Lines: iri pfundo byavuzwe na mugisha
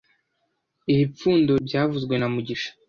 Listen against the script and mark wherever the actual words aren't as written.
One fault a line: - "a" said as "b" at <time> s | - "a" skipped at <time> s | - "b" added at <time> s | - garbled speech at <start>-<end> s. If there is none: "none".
none